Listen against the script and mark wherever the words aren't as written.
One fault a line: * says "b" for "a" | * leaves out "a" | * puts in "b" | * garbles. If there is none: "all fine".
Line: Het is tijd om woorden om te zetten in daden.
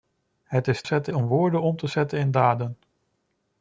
* says "zetten" for "tijd"